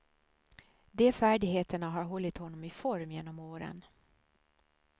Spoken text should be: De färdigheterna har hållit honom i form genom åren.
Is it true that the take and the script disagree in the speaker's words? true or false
false